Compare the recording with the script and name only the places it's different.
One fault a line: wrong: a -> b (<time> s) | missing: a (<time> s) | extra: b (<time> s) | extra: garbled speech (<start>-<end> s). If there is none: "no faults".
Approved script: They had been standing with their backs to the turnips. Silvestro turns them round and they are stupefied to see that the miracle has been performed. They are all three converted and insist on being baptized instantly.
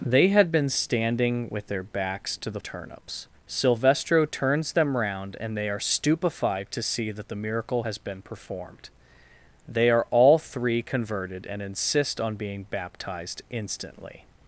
no faults